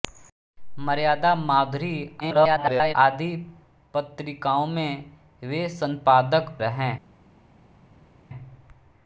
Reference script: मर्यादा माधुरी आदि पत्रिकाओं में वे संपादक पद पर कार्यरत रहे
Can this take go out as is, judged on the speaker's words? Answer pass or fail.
fail